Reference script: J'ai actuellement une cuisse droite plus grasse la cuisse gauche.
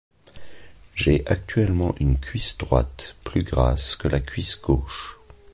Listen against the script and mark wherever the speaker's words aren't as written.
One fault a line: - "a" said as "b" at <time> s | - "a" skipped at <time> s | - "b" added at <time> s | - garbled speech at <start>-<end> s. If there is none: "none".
- "que" added at 3.9 s